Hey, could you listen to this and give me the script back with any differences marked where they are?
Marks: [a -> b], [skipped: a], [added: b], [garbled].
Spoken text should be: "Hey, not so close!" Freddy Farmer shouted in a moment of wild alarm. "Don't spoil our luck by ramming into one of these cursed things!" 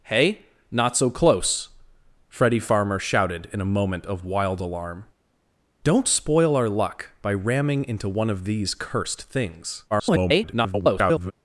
"Hey, not so close!" Freddy Farmer shouted in a moment of wild alarm. "Don't spoil our luck by ramming into one of these cursed things!" [garbled]